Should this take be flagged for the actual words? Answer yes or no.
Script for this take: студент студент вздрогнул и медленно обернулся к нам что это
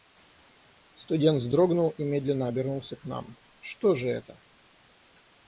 yes